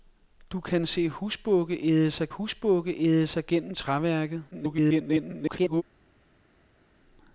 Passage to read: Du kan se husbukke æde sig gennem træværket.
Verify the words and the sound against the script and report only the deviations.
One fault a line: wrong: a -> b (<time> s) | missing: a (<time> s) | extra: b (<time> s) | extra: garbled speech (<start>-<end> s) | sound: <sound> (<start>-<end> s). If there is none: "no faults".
extra: husbukke æde sig (2.3 s)
extra: garbled speech (4.5-5.8 s)